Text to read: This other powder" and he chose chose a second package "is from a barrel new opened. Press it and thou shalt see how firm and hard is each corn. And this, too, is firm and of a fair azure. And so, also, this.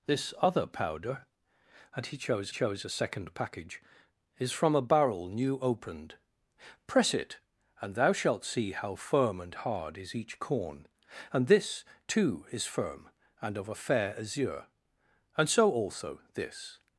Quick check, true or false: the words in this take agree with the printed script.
true